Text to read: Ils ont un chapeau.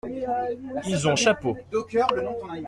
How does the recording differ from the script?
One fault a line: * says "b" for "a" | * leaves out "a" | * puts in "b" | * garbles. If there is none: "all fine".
all fine